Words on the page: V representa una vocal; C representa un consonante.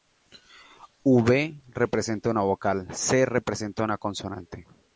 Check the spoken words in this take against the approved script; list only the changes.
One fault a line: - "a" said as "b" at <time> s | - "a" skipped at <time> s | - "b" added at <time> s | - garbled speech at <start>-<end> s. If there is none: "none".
- "un" said as "una" at 3.8 s